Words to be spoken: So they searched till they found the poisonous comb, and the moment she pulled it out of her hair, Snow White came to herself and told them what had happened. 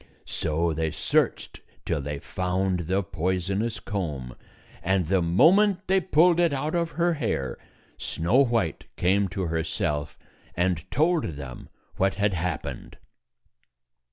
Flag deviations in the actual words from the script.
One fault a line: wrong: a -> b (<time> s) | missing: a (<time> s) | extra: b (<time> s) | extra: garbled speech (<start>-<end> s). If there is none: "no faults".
wrong: she -> they (5.8 s)